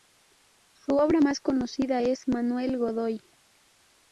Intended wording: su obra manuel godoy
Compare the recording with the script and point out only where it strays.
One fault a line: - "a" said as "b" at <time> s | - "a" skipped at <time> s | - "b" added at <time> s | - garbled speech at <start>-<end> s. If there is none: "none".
- "más conocida es" added at 1.2 s